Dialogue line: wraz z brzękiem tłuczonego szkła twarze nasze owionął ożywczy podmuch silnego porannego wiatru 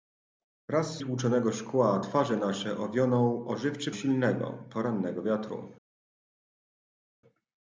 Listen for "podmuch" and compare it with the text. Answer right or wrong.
wrong